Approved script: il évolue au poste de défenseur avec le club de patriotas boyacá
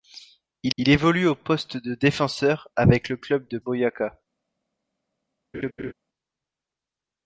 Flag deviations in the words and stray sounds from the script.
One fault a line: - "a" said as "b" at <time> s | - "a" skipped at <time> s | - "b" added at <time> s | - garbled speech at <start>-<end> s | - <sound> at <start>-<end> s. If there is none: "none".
- "il" added at 0.8 s
- "patriotas" skipped at 3.6 s
- laugh at 5.5-5.9 s